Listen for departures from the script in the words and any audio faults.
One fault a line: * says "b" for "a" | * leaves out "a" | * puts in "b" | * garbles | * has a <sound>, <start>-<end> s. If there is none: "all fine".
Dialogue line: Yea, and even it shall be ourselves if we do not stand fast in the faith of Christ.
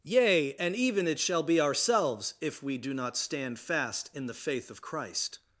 all fine